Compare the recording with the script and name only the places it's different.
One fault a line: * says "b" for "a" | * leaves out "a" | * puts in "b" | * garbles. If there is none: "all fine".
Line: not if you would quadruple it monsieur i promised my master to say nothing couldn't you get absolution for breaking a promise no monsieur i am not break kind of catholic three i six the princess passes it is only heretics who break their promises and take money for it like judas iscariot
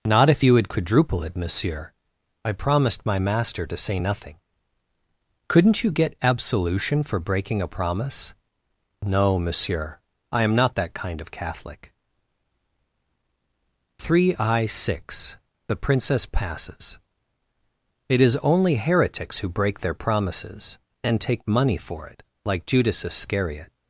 * says "that" for "break"